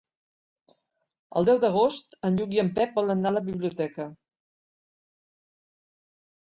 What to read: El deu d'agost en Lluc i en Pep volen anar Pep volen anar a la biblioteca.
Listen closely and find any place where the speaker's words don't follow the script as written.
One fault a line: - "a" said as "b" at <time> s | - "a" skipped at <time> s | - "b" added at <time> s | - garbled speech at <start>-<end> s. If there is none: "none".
- "Pep volen anar" skipped at 3.3 s